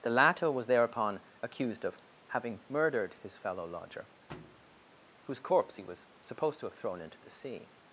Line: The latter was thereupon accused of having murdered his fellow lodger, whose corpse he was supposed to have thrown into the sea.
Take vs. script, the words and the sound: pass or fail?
fail